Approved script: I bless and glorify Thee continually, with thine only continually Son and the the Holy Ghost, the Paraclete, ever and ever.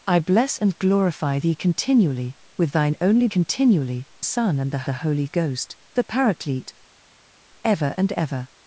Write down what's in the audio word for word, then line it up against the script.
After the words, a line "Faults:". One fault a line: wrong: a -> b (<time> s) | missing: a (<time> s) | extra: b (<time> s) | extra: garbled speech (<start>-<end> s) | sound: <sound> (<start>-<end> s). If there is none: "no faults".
I bless and glorify Thee continually, with thine only continually Son and the the Holy Ghost, the Paraclete, ever and ever.
Faults:
no faults